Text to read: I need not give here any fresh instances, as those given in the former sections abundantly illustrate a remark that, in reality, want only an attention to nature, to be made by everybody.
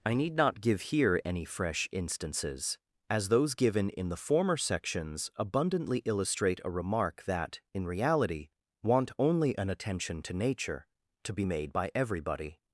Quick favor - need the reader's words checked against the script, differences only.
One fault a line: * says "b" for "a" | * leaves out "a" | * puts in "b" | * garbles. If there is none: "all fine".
all fine